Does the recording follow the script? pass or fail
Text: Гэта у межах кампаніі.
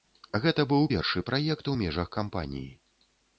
fail